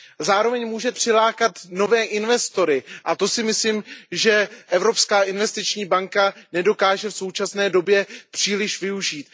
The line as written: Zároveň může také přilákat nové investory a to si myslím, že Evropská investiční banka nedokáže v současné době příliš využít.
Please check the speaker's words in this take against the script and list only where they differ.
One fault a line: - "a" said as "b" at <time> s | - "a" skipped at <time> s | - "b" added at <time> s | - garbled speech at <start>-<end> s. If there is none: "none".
- "také" skipped at 0.9 s